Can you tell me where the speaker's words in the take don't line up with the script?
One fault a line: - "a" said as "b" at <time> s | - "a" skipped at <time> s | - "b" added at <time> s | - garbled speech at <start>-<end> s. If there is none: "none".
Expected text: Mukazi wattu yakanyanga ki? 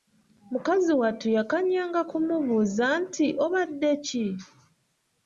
- "kumubuuza nti Obadde" added at 2.1 s